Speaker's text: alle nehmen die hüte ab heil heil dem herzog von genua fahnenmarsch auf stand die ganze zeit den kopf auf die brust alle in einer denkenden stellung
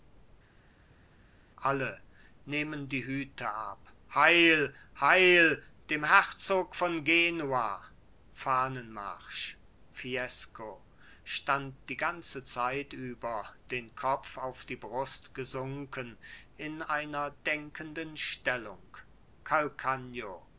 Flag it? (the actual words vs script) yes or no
yes